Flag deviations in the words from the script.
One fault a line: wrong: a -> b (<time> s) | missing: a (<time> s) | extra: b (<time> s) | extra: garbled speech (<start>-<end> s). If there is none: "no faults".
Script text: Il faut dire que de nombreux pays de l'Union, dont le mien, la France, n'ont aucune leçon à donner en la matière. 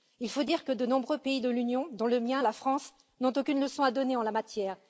no faults